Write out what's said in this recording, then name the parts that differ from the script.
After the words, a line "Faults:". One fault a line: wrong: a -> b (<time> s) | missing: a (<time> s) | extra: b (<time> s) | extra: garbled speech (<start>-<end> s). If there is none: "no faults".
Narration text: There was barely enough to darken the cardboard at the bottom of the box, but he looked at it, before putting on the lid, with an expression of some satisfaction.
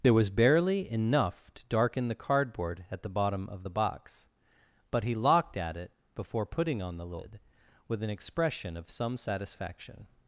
There was barely enough to darken the cardboard at the bottom of the box, but he locked at it, before putting on the lid, with an expression of some satisfaction.
Faults:
wrong: looked -> locked (5.1 s)